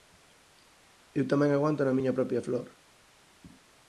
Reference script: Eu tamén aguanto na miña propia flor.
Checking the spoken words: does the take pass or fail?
pass